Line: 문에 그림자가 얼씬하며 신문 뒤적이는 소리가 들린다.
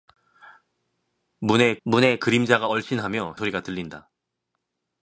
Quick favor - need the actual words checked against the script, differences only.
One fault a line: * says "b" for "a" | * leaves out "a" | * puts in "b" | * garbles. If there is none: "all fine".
* puts in "문에"
* leaves out "신문 뒤적이는"